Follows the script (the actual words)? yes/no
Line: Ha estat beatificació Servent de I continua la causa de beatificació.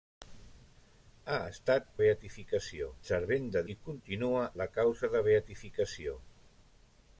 yes